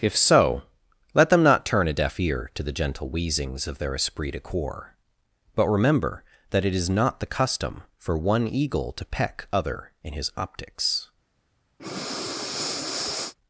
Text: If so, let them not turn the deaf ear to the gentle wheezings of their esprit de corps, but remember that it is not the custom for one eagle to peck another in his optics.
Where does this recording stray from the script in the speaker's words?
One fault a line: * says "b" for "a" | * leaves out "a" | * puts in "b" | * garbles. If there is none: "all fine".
* says "a" for "the"
* says "other" for "another"